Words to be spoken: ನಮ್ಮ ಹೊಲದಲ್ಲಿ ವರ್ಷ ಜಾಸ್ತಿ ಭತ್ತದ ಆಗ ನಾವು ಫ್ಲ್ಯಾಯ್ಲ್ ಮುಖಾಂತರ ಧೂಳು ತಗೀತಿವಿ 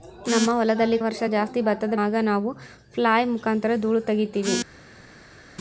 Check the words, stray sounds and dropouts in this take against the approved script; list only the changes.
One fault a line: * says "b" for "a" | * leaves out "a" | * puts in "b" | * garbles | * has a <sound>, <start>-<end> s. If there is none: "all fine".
all fine